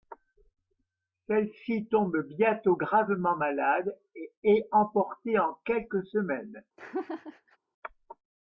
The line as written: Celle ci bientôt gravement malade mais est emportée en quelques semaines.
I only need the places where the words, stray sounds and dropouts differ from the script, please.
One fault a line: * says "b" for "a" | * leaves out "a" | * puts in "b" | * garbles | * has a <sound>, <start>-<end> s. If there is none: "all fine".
* puts in "tombe"
* says "et" for "mais"
* has a laugh, 6.8-7.6 s